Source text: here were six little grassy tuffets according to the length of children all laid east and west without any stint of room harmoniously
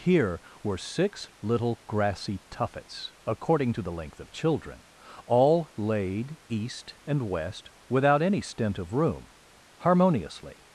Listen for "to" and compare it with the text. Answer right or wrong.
right